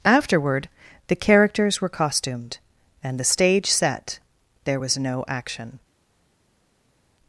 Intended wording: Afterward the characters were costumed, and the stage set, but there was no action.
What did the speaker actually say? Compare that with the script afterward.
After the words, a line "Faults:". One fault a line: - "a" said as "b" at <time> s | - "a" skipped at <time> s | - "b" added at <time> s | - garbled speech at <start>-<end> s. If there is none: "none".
Afterward the characters were costumed, and the stage set, there was no action.
Faults:
- "but" skipped at 4.2 s